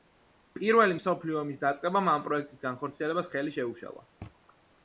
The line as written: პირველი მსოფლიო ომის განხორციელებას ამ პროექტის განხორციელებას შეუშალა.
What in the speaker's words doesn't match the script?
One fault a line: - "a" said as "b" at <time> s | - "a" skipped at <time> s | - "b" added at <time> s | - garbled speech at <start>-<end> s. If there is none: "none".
- "განხორციელებას" said as "დაწყებამ" at 1.7 s
- "ხელი" added at 3.3 s